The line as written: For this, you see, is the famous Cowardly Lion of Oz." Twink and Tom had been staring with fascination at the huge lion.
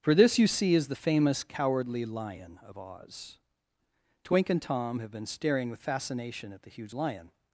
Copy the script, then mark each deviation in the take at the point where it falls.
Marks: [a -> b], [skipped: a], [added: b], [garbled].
For this, you see, is the famous Cowardly Lion of Oz." Twink and Tom [had -> have] been staring with fascination at the huge lion.